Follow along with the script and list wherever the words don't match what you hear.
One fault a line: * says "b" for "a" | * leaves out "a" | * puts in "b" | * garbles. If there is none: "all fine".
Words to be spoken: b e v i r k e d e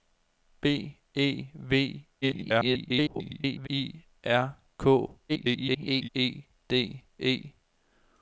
* garbles
* garbles